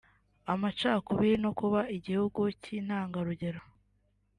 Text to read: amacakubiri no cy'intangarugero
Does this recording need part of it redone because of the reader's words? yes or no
yes